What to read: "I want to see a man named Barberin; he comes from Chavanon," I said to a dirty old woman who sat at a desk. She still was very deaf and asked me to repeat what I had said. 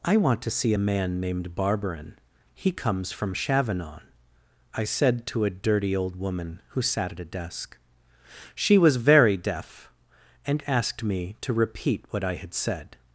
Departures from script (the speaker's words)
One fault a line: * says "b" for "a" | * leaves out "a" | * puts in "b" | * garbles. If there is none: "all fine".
* leaves out "still"